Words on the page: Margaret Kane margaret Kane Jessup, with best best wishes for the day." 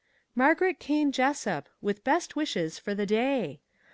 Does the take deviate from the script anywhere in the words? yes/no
yes